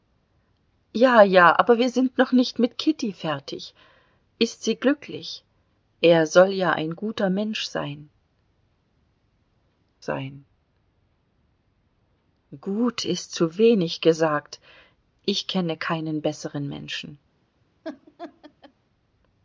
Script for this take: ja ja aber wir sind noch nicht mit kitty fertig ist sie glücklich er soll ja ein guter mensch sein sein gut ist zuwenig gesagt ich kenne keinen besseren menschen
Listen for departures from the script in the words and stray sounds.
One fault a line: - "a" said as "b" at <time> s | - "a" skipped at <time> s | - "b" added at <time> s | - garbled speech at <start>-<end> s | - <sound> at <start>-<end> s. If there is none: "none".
- laugh at 17.8-18.7 s